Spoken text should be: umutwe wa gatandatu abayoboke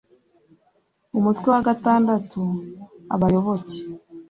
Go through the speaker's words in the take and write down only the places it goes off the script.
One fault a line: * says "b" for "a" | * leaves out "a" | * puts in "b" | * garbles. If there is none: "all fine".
all fine